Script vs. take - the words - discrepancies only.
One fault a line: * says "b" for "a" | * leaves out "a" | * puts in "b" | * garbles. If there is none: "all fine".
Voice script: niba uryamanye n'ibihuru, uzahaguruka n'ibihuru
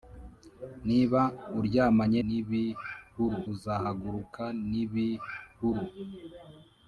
all fine